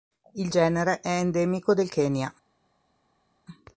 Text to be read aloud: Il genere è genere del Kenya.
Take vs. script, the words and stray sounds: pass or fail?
fail